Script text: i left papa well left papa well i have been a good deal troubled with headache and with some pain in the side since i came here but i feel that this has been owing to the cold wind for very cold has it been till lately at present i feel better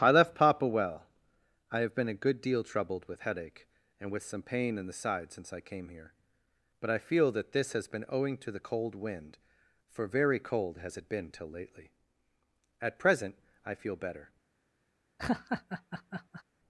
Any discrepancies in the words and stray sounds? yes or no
yes